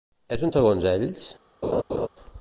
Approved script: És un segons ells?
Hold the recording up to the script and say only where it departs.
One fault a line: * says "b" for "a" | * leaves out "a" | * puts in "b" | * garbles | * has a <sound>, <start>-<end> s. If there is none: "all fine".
* has a laugh, 1.6-2.1 s